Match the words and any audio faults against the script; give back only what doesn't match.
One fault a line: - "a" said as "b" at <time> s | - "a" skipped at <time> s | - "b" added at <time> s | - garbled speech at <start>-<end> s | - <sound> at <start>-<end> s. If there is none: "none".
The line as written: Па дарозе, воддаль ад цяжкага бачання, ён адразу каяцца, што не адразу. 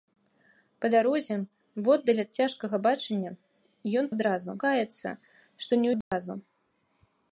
- dropout at 6.0-6.1 s